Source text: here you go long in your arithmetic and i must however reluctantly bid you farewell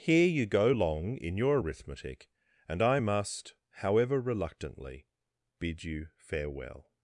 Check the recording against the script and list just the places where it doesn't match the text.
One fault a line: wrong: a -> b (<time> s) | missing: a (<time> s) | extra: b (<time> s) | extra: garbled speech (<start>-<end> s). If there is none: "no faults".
no faults